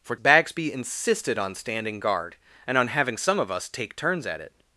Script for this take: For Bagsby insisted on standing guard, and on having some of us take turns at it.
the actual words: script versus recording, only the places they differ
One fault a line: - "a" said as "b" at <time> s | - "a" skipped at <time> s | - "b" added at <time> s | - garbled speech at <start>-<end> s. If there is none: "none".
none